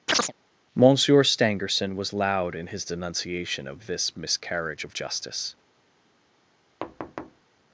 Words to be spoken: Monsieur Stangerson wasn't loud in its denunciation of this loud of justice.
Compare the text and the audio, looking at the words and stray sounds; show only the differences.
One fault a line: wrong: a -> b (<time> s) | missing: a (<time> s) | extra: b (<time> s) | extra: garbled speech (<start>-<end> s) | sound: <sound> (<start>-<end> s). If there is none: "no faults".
sound: chirp (0.1-0.3 s)
wrong: wasn't -> was (2.0 s)
wrong: its -> his (2.7 s)
wrong: loud -> miscarriage (4.1 s)
sound: thud (6.8-7.4 s)